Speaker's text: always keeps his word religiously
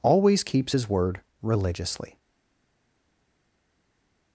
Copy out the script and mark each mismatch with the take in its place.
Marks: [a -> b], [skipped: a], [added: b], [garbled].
always keeps his word religiously